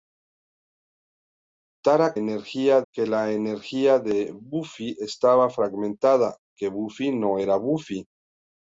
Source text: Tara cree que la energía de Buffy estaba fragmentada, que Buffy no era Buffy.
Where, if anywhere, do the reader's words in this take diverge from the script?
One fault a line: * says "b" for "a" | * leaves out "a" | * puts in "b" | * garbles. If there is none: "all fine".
* says "energía" for "cree"